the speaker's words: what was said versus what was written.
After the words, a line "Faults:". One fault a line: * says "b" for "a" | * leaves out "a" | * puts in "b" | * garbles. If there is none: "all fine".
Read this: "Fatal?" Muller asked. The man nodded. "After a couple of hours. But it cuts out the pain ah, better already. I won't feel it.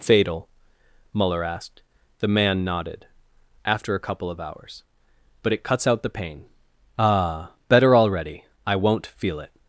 "Fatal?" Muller asked. The man nodded. "After a couple of hours. But it cuts out the pain ah, better already. I won't feel it.
Faults:
all fine